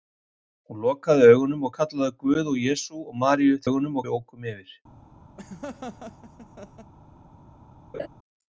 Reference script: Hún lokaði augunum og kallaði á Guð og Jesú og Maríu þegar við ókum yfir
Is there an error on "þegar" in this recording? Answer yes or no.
yes